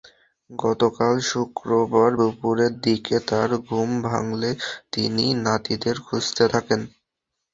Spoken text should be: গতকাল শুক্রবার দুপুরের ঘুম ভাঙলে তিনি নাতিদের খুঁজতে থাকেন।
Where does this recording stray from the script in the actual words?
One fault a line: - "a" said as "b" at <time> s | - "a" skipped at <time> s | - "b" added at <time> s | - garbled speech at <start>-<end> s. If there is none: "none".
- "দিকে তাঁর" added at 2.9 s